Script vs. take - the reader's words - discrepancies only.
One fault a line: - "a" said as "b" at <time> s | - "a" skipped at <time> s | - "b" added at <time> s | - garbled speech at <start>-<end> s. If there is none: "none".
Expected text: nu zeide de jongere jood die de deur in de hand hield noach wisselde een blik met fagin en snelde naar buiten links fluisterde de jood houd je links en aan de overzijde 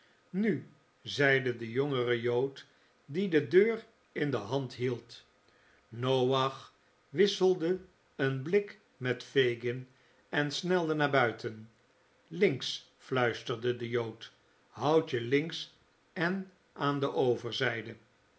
none